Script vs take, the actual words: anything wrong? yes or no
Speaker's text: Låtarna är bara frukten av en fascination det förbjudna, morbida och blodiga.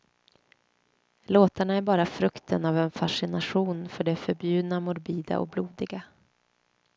yes